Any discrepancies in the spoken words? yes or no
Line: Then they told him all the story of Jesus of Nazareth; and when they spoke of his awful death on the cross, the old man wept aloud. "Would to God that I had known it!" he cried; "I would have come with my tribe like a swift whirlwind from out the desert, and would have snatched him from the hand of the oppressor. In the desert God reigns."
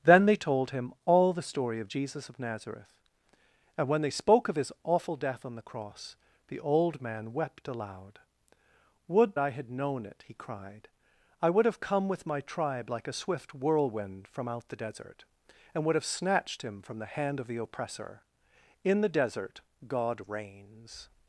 yes